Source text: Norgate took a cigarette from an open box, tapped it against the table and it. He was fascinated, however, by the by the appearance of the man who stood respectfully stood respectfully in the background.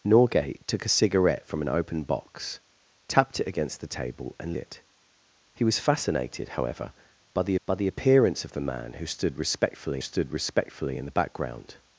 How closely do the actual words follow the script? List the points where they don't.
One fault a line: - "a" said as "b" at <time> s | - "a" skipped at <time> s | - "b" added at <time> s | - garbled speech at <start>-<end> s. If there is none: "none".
none